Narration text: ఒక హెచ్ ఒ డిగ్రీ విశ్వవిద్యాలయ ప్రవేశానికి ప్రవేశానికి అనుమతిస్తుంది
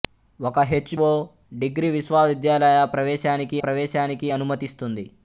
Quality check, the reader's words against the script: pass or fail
pass